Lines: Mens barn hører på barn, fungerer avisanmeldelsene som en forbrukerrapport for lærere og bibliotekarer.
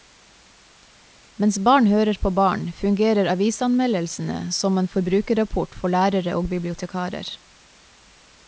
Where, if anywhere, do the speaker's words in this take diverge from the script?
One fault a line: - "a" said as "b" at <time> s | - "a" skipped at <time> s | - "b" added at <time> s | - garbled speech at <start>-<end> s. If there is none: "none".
none